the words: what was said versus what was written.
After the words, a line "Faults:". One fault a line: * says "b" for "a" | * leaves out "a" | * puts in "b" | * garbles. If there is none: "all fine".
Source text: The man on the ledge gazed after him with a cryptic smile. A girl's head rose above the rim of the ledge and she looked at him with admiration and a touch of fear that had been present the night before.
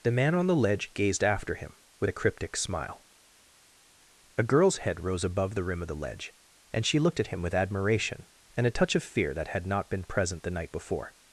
The man on the ledge gazed after him with a cryptic smile. A girl's head rose above the rim of the ledge and she looked at him with admiration and a touch of fear that had not been present the night before.
Faults:
* puts in "not"